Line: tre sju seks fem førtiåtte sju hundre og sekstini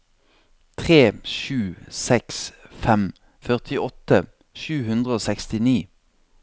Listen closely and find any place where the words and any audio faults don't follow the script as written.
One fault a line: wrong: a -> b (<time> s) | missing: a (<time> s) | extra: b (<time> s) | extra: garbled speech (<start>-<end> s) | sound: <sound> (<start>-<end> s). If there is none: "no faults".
no faults